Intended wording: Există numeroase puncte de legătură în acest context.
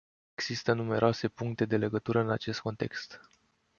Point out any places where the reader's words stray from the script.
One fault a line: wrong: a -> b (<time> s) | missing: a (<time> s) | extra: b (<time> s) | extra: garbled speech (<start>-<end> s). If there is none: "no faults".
no faults